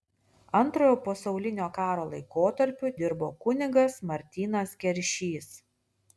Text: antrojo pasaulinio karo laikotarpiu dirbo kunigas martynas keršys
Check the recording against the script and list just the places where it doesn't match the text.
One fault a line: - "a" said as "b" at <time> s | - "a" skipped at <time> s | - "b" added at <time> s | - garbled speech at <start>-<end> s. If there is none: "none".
none